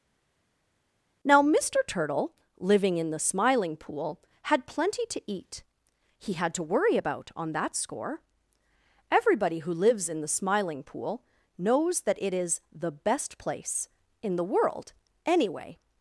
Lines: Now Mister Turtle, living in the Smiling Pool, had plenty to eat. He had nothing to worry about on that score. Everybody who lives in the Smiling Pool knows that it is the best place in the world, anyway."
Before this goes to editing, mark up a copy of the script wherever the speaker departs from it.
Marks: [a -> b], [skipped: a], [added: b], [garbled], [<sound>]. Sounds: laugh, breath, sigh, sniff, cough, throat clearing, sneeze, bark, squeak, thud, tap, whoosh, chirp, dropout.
Now Mister Turtle, living in the Smiling Pool, had plenty to eat. He had [skipped: nothing] to worry about on that score. Everybody who lives in the Smiling Pool knows that it is the best place in the world, anyway."